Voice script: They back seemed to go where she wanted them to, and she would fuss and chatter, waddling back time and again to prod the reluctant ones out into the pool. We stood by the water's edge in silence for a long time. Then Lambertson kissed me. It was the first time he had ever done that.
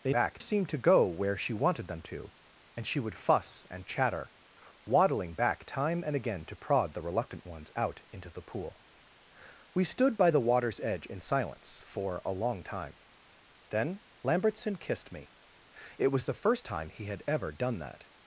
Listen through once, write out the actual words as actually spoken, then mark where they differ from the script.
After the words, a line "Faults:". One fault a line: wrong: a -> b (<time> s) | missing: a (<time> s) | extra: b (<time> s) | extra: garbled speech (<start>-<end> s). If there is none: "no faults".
They back seemed to go where she wanted them to, and she would fuss and chatter, waddling back time and again to prod the reluctant ones out into the pool. We stood by the water's edge in silence for a long time. Then Lambertson kissed me. It was the first time he had ever done that.
Faults:
no faults